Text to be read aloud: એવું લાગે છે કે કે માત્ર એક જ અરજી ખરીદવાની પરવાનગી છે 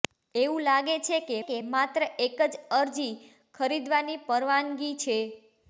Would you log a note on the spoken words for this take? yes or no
no